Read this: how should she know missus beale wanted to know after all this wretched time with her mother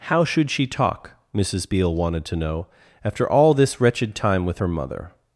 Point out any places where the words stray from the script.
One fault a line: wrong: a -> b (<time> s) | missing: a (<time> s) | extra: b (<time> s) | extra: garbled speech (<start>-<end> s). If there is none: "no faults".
wrong: know -> talk (0.7 s)